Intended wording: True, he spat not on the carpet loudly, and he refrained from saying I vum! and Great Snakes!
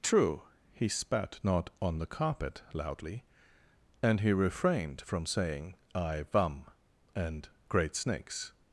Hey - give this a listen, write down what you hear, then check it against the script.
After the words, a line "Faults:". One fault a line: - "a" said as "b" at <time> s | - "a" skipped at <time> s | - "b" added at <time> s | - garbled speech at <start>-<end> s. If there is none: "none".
True, he spat not on the carpet loudly, and he refrained from saying I vum! and Great Snakes!
Faults:
none